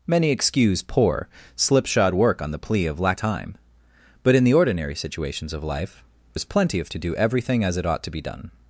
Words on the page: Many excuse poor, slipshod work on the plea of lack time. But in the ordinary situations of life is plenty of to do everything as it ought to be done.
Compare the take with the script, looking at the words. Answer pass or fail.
pass